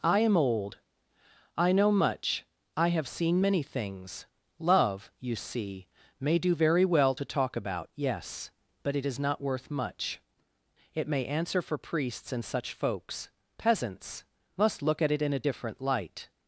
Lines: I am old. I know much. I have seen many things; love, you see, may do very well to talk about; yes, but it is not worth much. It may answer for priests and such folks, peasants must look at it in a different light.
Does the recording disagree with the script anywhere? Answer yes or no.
no